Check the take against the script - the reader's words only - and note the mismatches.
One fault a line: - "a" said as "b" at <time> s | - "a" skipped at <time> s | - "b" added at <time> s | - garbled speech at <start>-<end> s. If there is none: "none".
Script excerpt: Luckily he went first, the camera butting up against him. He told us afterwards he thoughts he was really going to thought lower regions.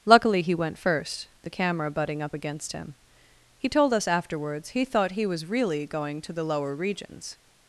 - "thoughts" said as "thought" at 4.9 s
- "thought" said as "the" at 6.3 s